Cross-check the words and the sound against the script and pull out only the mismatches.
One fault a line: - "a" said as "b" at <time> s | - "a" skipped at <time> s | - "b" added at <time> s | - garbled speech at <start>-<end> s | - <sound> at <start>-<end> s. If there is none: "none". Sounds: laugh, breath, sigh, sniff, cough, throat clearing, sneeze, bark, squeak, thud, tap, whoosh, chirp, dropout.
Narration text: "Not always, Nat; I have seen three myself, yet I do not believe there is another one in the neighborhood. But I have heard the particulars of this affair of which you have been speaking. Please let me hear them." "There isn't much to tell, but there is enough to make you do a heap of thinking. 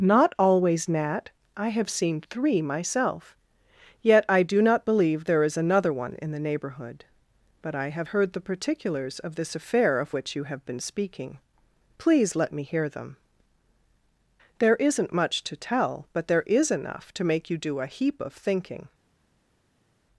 none